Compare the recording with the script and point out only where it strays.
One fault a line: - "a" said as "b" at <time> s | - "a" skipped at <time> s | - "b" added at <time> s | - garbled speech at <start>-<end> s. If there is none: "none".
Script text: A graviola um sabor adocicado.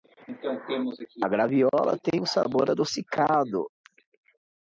- "tem" added at 2.0 s